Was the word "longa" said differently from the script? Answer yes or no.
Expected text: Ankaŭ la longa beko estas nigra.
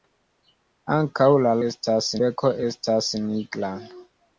yes